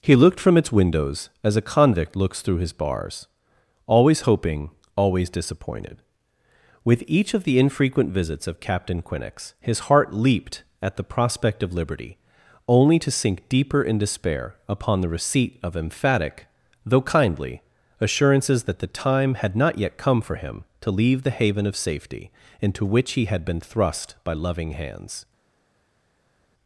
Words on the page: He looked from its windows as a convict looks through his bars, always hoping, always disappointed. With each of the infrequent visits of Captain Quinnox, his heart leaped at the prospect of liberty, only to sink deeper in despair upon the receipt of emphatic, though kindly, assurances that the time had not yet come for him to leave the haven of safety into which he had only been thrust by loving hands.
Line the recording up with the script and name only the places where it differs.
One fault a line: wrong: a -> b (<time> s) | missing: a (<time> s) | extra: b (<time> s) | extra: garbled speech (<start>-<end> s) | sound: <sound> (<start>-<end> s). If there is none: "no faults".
missing: only (23.4 s)